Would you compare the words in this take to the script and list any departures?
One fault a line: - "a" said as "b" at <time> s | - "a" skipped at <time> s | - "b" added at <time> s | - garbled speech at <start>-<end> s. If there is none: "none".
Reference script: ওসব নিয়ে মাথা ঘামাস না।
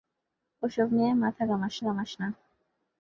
- "ঘামাস" added at 1.8 s